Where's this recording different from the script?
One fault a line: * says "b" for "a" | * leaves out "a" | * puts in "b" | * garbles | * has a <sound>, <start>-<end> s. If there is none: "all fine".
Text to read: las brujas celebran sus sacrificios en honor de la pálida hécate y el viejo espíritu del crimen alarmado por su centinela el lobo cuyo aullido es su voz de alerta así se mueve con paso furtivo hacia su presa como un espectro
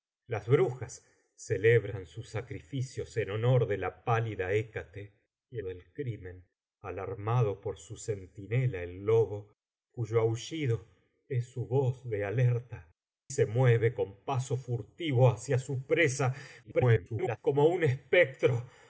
* leaves out "el viejo espíritu"
* leaves out "así"
* garbles